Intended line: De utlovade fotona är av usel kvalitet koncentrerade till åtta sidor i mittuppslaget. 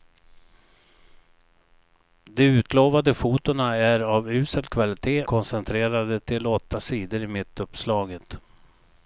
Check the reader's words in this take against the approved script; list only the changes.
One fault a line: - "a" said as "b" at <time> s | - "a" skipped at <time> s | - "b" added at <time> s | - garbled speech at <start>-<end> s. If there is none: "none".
none